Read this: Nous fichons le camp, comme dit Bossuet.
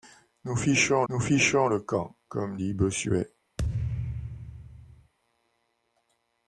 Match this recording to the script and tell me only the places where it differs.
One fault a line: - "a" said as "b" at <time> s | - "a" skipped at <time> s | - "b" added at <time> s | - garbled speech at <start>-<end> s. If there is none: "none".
- "nous fichons" added at 1.1 s